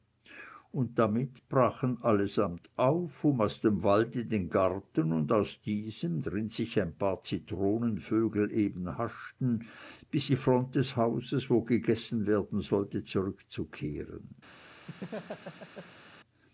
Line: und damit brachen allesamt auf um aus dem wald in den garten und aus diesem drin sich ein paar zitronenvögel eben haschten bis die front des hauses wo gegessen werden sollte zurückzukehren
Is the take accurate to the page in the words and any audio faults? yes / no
no